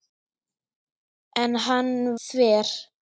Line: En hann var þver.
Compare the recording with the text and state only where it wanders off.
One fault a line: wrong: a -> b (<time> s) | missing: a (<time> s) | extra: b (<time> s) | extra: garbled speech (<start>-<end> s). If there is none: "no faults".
missing: var (1.9 s)